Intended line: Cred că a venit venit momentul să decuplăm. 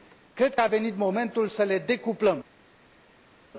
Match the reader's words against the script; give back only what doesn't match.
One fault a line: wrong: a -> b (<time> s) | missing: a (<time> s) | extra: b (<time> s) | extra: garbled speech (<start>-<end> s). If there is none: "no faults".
missing: venit (1.0 s)
extra: le (1.6 s)